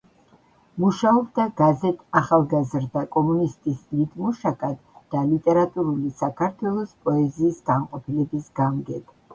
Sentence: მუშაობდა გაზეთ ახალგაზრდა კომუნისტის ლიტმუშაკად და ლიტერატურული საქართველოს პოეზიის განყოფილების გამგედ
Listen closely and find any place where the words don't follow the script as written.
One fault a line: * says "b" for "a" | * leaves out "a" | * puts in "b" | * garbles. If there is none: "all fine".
all fine